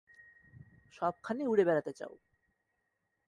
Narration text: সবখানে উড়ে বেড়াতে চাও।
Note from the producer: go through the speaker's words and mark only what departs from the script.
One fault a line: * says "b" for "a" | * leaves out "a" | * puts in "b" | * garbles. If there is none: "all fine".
all fine